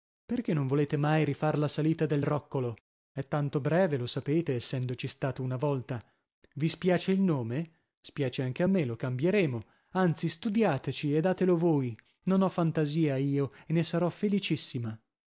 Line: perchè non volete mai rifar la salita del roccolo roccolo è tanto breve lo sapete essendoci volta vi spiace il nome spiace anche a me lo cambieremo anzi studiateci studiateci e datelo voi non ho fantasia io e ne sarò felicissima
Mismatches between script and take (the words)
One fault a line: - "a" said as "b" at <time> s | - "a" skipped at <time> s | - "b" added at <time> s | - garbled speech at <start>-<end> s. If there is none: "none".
- "roccolo" skipped at 2.8 s
- "stato una" added at 5.1 s
- "studiateci" skipped at 11.1 s